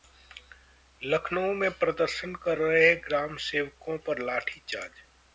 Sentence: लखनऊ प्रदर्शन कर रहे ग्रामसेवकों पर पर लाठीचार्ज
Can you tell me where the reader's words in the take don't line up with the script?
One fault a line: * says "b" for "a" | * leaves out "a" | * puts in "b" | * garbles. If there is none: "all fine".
* puts in "में"
* leaves out "पर"